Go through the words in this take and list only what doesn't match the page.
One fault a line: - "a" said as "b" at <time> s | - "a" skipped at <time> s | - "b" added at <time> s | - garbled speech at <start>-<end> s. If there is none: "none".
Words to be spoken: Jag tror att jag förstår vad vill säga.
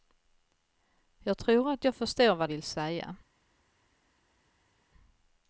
none